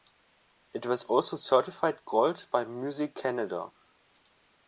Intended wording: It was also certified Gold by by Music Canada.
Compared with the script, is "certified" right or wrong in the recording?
right